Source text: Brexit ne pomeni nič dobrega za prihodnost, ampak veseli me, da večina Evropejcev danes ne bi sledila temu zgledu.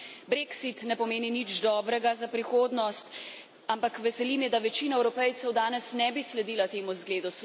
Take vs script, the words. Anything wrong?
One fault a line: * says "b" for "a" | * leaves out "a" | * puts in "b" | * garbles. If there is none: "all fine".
all fine